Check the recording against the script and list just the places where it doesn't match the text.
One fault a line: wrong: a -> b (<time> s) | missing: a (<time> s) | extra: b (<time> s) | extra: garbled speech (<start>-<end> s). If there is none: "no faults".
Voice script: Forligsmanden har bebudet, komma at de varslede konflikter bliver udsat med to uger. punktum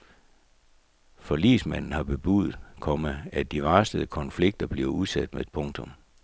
missing: to uger (5.5 s)